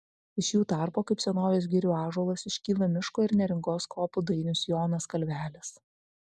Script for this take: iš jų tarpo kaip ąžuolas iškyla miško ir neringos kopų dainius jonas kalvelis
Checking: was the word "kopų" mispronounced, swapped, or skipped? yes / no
no